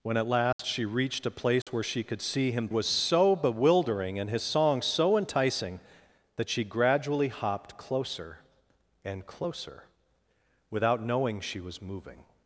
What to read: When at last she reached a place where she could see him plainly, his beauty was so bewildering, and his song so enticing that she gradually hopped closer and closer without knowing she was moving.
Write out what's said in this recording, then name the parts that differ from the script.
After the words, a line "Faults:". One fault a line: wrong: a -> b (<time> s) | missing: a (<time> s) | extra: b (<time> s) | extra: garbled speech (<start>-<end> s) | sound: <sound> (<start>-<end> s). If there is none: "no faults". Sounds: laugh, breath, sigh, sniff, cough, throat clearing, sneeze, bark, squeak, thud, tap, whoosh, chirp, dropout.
When at last she reached a place where she could see him was so bewildering, and his song so enticing that she gradually hopped closer and closer without knowing she was moving.
Faults:
sound: dropout (0.5-0.6 s)
sound: dropout (1.6-1.7 s)
missing: plainly his beauty (2.7 s)